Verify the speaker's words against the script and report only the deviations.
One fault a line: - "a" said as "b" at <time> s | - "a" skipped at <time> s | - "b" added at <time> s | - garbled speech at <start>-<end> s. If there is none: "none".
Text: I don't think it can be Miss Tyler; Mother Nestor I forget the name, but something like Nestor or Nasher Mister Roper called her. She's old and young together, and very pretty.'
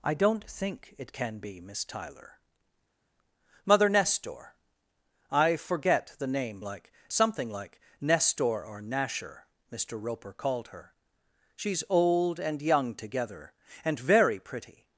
- "but" said as "like" at 6.6 s